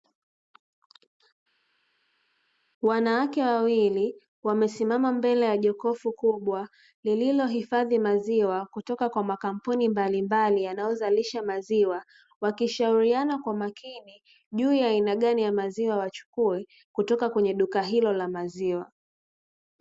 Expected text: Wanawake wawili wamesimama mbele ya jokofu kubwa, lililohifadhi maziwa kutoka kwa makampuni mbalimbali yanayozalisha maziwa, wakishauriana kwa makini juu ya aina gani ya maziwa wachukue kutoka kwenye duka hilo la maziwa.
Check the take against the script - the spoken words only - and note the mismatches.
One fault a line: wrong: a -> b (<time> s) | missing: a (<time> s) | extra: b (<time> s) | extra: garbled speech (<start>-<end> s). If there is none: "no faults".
no faults